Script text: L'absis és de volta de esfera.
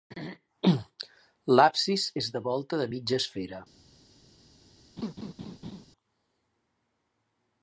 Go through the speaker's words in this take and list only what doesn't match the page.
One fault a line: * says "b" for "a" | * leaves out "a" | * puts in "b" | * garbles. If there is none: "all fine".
* puts in "mitja"